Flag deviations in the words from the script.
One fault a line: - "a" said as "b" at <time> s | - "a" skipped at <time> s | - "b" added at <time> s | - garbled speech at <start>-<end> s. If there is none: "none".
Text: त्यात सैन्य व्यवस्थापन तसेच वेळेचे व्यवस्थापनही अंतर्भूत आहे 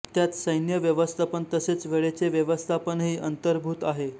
none